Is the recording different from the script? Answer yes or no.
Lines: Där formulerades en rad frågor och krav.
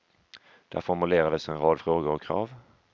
no